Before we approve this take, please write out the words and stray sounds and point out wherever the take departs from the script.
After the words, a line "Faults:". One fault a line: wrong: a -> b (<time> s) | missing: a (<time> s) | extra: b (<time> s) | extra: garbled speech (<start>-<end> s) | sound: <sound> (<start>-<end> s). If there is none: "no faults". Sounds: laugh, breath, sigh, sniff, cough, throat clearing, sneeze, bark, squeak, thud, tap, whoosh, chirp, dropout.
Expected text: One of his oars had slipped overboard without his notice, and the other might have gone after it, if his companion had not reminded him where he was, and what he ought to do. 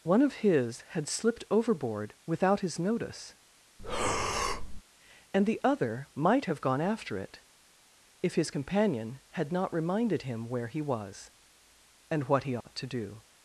One of his had slipped overboard without his notice, and the other might have gone after it, if his companion had not reminded him where he was, and what he ought to do.
Faults:
missing: oars (0.8 s)
sound: breath (3.8-4.8 s)
sound: dropout (12.6-12.6 s)